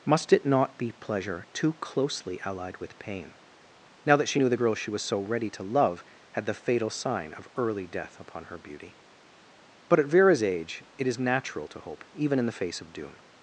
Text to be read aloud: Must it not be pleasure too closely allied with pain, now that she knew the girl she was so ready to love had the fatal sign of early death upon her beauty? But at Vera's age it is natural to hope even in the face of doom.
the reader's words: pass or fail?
pass